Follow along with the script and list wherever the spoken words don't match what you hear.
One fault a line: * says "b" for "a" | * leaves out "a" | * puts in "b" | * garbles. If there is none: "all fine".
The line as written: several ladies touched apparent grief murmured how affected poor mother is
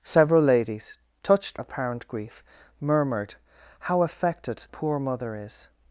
all fine